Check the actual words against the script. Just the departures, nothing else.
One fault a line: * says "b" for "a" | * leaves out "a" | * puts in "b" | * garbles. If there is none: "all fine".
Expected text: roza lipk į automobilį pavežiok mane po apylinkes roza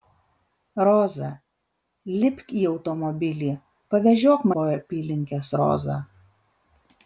* leaves out "mane"